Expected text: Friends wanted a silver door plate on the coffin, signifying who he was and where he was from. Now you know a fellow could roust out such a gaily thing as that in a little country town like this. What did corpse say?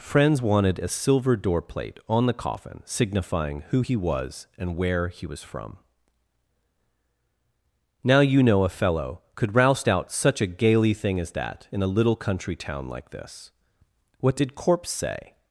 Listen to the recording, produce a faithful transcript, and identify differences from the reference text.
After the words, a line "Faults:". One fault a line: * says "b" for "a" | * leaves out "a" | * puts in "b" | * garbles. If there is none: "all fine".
Friends wanted a silver door plate on the coffin, signifying who he was and where he was from. Now you know a fellow could roust out such a gaily thing as that in a little country town like this. What did corpse say?
Faults:
all fine